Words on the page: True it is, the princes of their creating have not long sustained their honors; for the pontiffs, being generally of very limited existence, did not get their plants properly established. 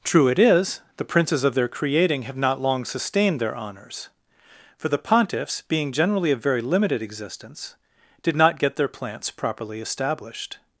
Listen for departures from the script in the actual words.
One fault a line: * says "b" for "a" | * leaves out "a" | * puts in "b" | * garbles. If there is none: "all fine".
all fine